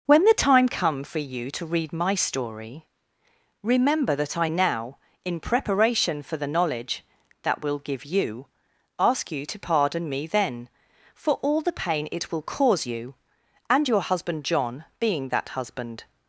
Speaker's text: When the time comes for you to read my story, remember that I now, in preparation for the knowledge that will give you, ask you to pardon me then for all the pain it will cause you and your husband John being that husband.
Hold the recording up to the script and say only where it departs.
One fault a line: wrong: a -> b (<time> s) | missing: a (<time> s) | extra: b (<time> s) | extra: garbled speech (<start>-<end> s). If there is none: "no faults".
wrong: comes -> come (0.7 s)